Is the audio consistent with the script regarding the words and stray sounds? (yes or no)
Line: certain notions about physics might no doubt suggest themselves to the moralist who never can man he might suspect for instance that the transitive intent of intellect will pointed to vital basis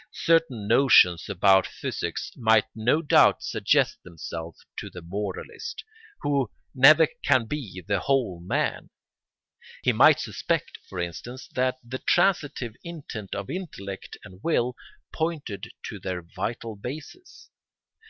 no